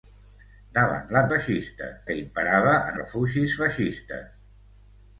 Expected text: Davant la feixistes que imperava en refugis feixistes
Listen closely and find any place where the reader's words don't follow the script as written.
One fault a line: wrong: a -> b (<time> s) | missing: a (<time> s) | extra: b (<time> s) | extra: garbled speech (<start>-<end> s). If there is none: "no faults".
no faults